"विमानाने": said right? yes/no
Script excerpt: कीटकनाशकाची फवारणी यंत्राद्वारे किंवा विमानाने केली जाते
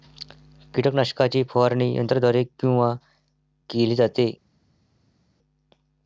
no